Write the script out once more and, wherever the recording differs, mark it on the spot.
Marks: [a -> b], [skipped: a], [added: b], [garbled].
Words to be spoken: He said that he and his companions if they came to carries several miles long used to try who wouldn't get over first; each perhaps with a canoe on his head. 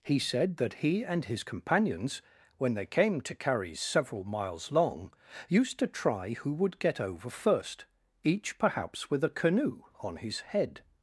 He said that he and his companions [if -> when] they came to carries several miles long used to try who [wouldn't -> would] get over first; each perhaps with a canoe on his head.